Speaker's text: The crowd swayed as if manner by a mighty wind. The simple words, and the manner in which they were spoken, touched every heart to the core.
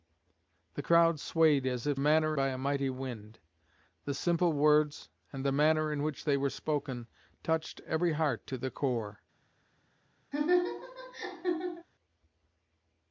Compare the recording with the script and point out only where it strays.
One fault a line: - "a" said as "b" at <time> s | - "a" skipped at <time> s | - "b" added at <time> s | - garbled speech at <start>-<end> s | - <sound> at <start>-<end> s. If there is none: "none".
- laugh at 10.3-11.9 s